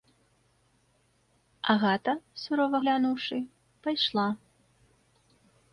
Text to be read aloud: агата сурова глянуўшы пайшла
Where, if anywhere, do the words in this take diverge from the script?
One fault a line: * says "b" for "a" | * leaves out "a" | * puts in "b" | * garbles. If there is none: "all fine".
all fine